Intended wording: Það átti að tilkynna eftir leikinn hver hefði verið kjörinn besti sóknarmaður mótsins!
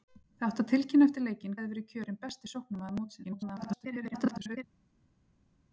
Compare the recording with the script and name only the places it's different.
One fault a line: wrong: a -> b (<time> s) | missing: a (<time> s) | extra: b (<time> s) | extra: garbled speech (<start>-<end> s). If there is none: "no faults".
missing: hver (1.6 s)
extra: garbled speech (3.2-4.6 s)